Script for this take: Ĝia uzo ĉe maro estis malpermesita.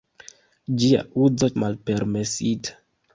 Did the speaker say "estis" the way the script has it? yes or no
no